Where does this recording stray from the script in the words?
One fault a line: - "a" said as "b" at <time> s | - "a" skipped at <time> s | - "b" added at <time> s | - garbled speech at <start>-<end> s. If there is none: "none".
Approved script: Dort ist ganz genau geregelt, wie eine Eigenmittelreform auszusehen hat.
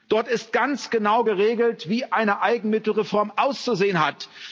none